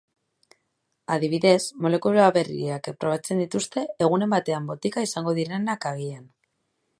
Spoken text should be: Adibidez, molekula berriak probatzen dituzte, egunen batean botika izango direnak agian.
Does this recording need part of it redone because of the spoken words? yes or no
no